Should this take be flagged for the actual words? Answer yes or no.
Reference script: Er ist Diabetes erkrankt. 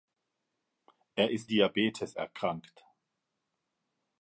no